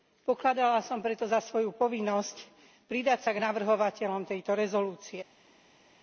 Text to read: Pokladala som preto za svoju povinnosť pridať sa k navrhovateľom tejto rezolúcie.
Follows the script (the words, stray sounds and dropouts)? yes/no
yes